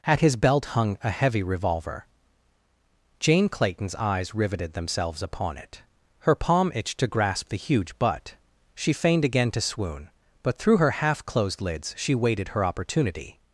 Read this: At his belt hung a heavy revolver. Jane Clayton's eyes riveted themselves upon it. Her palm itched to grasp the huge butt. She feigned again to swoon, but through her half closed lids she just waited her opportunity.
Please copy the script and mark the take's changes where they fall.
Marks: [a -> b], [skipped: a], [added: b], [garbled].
At his belt hung a heavy revolver. Jane Clayton's eyes riveted themselves upon it. Her palm itched to grasp the huge butt. She feigned again to swoon, but through her half closed lids she [skipped: just] waited her opportunity.